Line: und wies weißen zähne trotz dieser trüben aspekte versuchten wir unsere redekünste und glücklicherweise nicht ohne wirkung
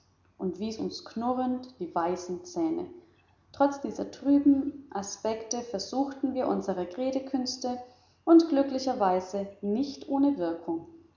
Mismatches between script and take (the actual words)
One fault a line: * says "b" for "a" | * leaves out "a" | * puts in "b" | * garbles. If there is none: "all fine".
* puts in "uns knurrend die"